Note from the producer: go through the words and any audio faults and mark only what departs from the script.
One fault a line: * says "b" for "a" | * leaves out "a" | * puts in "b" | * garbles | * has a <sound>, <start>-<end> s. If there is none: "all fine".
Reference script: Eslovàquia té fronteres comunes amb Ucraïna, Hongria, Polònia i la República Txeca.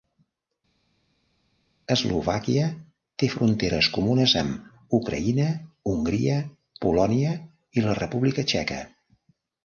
all fine